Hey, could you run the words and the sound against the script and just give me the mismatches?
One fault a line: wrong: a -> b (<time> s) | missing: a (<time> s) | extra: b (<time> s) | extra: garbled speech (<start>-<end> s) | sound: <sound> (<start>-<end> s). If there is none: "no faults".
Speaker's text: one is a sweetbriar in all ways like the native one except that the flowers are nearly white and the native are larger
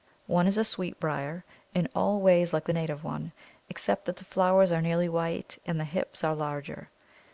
wrong: native -> hips (5.8 s)